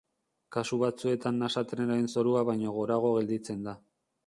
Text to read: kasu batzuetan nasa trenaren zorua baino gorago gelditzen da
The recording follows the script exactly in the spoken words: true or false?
true